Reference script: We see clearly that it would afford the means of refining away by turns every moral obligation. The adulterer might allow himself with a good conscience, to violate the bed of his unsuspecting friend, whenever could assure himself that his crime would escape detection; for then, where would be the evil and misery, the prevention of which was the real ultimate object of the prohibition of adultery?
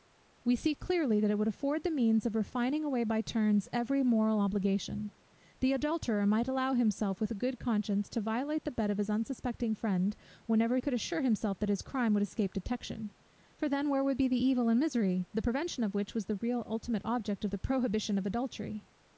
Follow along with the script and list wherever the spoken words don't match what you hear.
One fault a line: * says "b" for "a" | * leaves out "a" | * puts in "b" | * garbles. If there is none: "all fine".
all fine